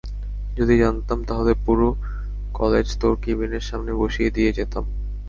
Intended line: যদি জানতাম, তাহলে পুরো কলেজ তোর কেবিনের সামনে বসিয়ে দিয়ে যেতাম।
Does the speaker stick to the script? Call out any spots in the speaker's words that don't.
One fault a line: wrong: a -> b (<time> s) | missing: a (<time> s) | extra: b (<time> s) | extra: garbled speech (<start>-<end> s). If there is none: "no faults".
no faults